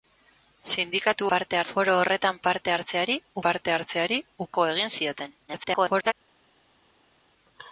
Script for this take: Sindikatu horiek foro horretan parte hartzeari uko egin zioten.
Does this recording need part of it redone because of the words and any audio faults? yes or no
yes